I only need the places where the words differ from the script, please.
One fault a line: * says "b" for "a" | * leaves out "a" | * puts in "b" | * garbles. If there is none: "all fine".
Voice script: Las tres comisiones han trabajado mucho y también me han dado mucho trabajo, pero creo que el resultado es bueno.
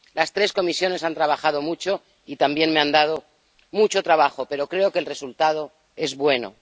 all fine